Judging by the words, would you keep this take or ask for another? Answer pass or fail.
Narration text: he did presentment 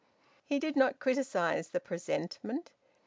fail